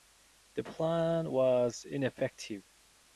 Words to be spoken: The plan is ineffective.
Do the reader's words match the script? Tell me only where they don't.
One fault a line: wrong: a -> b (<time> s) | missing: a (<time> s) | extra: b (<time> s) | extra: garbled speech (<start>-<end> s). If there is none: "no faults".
wrong: is -> was (1.3 s)